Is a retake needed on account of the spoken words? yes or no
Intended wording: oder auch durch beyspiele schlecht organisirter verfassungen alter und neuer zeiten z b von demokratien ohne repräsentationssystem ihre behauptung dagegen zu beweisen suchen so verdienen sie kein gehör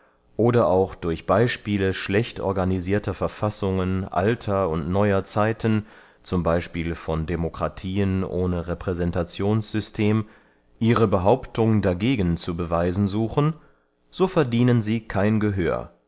no